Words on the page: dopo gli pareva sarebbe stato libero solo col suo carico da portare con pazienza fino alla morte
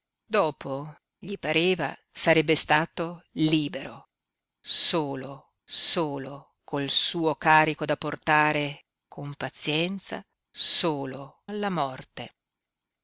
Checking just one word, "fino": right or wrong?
wrong